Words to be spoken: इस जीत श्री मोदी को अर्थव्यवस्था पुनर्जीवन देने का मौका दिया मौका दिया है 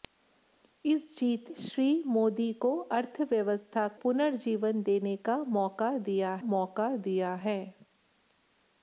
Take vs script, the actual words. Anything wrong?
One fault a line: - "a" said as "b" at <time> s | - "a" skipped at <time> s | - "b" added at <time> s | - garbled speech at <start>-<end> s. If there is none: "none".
none